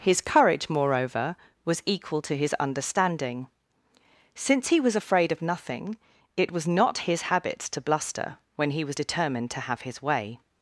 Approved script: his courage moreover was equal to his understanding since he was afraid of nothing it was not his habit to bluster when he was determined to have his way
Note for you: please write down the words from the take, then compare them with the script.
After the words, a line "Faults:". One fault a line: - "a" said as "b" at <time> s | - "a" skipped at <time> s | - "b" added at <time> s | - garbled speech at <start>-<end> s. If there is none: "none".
his courage moreover was equal to his understanding since he was afraid of nothing it was not his habit to bluster when he was determined to have his way
Faults:
none